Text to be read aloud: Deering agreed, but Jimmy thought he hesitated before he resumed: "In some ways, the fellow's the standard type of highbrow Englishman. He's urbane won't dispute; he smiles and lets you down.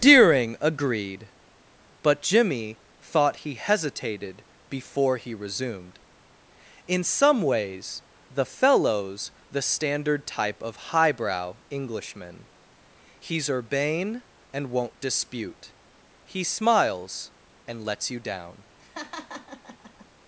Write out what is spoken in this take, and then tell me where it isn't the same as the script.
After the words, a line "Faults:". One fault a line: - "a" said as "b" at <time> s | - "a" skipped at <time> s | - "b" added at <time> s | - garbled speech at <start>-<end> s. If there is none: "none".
Deering agreed, but Jimmy thought he hesitated before he resumed: "In some ways, the fellow's the standard type of highbrow Englishman. He's urbane and won't dispute; he smiles and lets you down.
Faults:
- "and" added at 14.5 s